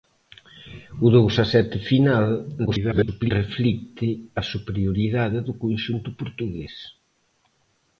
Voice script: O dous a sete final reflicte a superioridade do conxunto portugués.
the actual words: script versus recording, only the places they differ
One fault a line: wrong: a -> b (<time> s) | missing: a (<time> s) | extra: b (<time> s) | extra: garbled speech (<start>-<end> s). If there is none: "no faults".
extra: garbled speech (2.7-3.3 s)